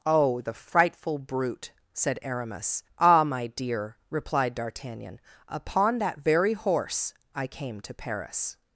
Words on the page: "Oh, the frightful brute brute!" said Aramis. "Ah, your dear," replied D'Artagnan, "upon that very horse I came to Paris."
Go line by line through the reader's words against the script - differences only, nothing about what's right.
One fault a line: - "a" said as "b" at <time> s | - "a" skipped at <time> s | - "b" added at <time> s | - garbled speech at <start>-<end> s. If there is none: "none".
- "brute" skipped at 1.7 s
- "your" said as "my" at 3.2 s